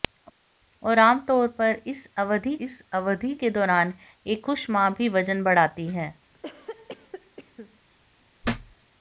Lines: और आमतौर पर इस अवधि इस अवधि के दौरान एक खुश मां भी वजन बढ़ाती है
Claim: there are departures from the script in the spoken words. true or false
false